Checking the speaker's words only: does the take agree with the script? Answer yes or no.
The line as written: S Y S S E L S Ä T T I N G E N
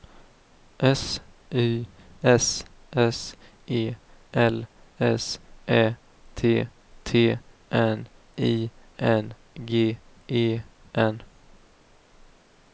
no